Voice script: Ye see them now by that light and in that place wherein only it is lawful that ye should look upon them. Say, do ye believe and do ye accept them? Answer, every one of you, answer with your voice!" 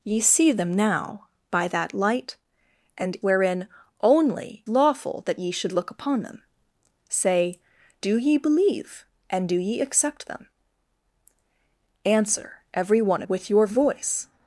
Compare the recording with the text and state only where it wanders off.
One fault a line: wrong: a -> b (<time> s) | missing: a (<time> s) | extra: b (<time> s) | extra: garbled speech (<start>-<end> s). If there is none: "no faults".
missing: in that place (3.2 s)
missing: it is (4.7 s)
missing: of you answer (13.2 s)